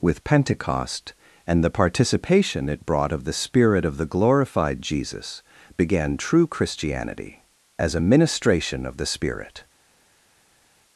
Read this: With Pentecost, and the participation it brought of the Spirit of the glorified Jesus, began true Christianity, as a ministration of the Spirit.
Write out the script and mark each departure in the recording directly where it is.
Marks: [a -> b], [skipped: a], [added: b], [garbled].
With Pentecost, and the participation it brought of the Spirit of the glorified Jesus, began true Christianity, as a ministration of the Spirit.